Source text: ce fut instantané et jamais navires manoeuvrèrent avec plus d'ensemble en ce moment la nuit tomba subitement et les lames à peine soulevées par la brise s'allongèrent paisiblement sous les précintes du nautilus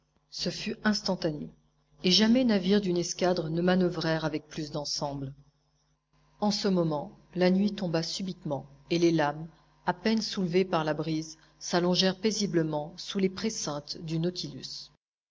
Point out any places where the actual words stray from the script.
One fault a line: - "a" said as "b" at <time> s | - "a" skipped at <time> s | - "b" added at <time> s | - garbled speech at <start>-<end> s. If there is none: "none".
- "d'une escadre ne" added at 2.8 s